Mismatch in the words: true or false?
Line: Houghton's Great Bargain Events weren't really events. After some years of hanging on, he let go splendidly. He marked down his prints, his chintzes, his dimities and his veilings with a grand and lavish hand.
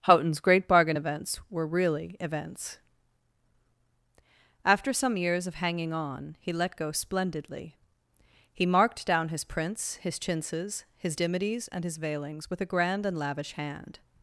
true